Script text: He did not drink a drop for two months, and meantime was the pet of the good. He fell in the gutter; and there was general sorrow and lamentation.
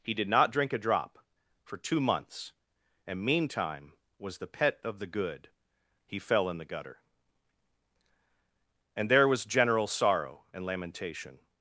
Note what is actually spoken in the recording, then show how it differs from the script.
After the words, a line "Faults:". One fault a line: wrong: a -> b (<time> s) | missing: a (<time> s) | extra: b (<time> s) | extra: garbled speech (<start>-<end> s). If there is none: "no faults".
He did not drink a drop for two months, and meantime was the pet of the good. He fell in the gutter; and there was general sorrow and lamentation.
Faults:
no faults